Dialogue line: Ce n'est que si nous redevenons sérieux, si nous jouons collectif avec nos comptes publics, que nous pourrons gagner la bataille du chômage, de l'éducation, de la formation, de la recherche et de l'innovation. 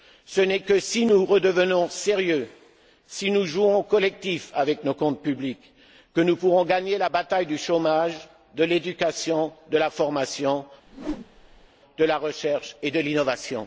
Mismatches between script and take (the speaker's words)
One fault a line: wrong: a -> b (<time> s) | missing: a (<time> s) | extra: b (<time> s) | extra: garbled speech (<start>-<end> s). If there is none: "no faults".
no faults